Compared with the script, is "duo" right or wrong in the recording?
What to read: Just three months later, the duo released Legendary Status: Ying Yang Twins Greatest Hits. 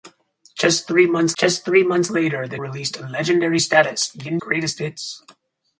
wrong